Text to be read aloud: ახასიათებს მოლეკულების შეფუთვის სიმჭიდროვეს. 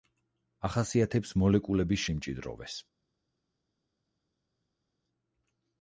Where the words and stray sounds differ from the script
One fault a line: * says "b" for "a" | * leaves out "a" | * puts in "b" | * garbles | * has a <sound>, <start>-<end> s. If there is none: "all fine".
* leaves out "შეფუთვის"